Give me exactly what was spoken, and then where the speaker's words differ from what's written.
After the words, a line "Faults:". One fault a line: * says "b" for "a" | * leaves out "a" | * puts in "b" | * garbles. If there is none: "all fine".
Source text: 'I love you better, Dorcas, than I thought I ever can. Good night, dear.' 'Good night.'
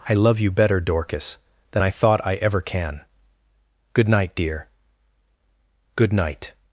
'I love you better, Dorcas, than I thought I ever can. Good night, dear.' 'Good night.'
Faults:
all fine